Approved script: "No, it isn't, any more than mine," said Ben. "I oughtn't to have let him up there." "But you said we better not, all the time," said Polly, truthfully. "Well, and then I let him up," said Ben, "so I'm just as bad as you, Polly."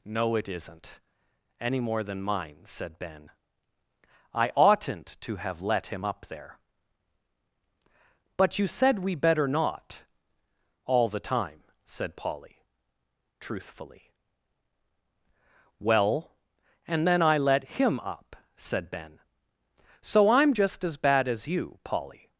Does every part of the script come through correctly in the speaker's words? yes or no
yes